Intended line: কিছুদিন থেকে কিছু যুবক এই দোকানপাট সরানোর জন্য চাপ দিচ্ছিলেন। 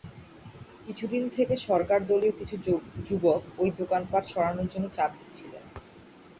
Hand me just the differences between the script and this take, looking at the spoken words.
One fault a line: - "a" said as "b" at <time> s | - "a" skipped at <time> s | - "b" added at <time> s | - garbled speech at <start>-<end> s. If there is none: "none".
- "সরকারদলীয়" added at 1.7 s
- "এই" said as "ওই" at 3.6 s